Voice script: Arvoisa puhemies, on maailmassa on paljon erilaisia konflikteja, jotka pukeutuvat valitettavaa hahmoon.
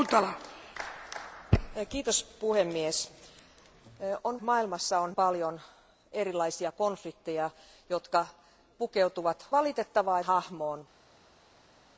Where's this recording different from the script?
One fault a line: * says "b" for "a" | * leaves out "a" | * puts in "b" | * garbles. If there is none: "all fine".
all fine